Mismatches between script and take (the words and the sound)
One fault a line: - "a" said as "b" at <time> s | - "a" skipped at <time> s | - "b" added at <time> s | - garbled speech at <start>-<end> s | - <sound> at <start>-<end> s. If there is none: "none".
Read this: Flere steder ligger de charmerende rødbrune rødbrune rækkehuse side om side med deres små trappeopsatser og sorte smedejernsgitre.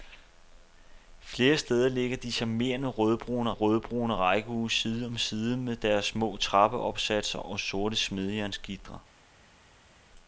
none